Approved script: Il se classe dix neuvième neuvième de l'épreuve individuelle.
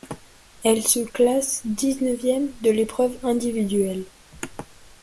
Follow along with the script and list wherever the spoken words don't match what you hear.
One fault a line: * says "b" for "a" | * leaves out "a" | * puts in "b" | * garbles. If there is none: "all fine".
* says "Elle" for "Il"
* leaves out "neuvième"